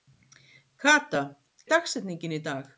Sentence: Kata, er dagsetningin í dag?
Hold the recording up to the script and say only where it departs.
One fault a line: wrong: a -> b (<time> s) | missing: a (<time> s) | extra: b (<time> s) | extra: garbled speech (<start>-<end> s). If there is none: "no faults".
no faults